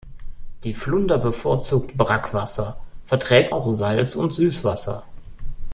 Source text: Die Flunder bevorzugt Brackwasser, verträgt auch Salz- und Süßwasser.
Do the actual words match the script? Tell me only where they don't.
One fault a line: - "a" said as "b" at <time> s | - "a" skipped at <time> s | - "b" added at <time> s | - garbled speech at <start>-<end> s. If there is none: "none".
none